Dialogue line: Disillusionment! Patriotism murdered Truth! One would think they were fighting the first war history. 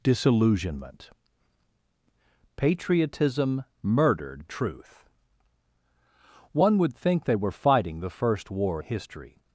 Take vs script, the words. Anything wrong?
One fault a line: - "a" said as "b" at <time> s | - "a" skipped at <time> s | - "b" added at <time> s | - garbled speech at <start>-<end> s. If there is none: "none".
none